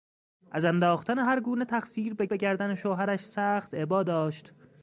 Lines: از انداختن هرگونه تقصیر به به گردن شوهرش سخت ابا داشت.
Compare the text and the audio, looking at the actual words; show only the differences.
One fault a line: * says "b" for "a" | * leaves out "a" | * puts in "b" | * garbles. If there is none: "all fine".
all fine